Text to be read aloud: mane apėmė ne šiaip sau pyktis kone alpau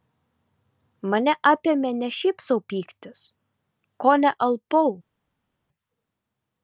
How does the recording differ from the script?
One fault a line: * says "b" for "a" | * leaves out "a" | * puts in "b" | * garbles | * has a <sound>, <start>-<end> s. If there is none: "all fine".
all fine